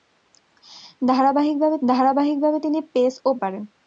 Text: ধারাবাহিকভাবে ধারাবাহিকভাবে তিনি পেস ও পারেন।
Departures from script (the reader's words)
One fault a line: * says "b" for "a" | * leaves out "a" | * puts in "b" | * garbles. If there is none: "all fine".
all fine